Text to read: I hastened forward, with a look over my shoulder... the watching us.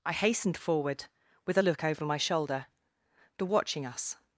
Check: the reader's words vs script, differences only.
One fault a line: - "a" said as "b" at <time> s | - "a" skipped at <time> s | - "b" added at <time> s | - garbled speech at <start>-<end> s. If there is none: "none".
none